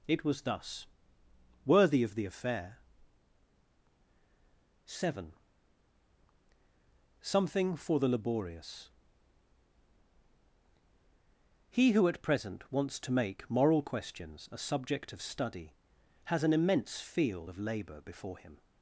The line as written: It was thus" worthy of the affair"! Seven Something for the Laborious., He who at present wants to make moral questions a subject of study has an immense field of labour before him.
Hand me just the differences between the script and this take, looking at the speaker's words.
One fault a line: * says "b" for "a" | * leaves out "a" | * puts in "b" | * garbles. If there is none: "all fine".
all fine